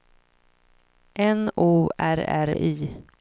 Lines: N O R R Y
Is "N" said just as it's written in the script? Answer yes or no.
yes